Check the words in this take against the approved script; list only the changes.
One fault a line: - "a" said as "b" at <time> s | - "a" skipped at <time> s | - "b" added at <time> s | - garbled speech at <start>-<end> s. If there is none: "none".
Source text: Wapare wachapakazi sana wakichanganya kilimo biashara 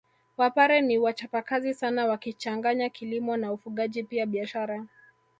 - "ni" added at 0.8 s
- "na ufugaji pia" added at 3.4 s